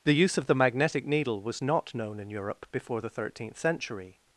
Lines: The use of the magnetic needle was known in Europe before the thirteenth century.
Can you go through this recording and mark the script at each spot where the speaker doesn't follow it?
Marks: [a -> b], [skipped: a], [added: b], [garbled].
The use of the magnetic needle was [added: not] known in Europe before the thirteenth century.